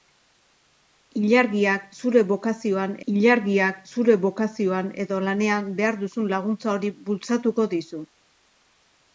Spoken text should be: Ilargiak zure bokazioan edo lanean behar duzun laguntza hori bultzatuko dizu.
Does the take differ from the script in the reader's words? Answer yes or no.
yes